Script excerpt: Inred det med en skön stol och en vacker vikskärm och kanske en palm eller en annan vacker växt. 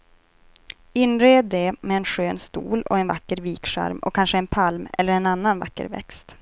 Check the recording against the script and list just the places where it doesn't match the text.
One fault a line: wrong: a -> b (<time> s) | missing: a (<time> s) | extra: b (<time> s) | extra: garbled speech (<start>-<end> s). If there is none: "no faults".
no faults